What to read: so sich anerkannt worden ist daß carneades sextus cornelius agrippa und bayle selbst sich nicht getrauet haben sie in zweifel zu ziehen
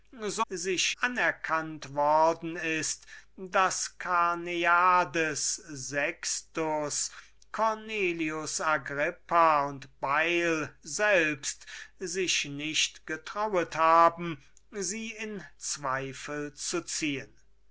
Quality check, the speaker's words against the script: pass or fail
pass